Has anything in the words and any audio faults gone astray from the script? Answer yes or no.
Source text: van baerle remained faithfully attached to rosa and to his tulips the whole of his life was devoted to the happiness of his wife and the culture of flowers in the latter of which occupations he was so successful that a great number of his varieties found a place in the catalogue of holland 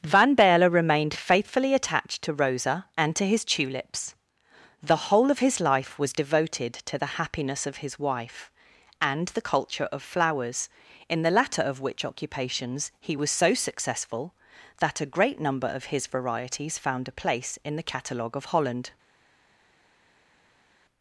no